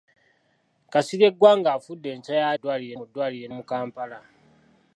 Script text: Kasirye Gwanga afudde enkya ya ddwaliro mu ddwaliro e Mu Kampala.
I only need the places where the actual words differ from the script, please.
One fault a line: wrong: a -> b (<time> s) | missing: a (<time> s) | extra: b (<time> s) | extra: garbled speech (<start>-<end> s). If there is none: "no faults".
no faults